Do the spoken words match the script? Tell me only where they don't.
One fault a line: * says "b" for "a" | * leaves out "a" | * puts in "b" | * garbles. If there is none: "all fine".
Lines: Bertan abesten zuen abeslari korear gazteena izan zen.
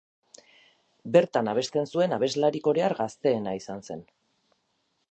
all fine